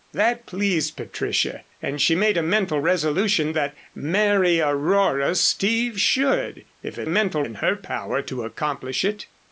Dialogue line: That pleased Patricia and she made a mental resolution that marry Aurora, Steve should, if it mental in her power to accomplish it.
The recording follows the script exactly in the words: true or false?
true